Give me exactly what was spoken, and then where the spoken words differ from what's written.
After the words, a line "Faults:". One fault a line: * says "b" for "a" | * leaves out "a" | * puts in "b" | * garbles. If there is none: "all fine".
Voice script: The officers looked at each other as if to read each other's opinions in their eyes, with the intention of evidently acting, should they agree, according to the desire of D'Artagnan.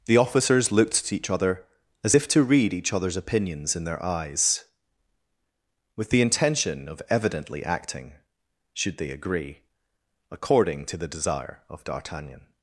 The officers looked at each other as if to read each other's opinions in their eyes, with the intention of evidently acting, should they agree, according to the desire of D'Artagnan.
Faults:
all fine